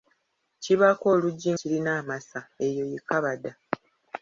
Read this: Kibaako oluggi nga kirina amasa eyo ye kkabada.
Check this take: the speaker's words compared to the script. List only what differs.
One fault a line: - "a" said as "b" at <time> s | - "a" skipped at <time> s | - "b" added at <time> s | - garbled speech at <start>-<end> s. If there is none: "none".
- "nga" skipped at 1.5 s